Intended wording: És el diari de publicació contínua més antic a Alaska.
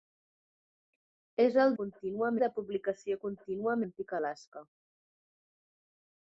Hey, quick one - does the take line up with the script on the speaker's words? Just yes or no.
no